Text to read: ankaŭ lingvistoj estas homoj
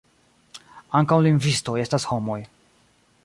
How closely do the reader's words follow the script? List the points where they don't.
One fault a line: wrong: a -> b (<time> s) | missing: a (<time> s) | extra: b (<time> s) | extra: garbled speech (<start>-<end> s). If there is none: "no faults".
no faults